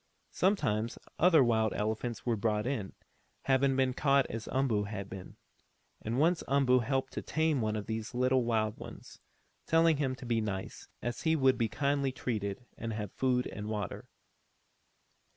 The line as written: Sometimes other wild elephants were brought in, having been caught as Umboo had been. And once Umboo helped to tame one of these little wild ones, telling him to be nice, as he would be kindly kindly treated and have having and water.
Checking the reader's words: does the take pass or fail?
fail